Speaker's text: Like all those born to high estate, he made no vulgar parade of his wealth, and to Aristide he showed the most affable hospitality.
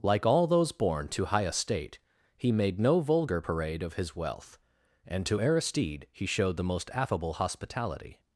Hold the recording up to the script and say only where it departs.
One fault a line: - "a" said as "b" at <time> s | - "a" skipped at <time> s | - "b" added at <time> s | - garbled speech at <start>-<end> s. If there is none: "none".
none